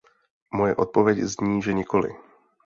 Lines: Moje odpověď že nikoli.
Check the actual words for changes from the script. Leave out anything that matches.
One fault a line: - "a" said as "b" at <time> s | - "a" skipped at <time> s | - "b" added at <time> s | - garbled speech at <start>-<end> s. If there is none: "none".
- "zní" added at 1.2 s